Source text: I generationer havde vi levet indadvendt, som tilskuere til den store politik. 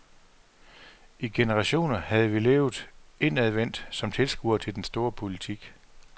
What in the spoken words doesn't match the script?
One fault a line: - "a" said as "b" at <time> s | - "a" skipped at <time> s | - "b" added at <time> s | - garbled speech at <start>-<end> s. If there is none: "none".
none